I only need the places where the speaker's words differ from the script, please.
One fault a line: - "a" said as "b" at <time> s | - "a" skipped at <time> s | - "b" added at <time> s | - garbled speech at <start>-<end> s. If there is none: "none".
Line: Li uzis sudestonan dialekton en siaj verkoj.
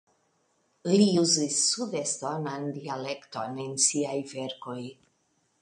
none